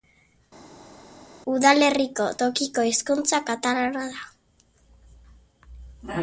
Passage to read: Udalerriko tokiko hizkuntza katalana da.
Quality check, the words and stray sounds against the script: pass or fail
pass